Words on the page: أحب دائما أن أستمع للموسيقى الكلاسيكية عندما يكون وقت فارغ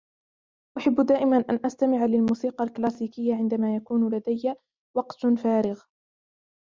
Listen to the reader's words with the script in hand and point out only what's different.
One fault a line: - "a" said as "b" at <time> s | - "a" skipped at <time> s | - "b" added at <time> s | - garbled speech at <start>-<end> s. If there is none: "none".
- "لدي" added at 4.1 s